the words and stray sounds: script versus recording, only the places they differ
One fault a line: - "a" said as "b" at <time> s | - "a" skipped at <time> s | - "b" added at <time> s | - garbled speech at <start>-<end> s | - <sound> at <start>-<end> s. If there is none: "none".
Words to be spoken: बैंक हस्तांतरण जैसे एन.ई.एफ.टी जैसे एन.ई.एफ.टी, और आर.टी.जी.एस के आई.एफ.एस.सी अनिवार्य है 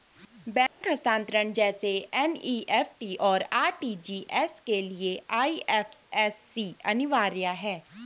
- dropout at 0.7-0.8 s
- "जैसे एन.ई.एफ.टी" skipped at 3.2 s
- "लिए" added at 4.8 s